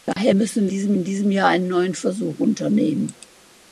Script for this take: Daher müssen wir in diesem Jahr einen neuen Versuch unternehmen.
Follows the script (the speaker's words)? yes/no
no